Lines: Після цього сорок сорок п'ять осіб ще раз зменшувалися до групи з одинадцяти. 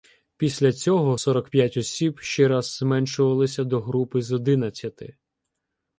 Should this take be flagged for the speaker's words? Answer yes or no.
yes